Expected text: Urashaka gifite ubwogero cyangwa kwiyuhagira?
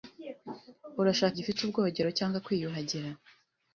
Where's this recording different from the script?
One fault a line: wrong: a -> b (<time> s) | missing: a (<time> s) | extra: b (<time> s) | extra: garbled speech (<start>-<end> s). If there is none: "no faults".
no faults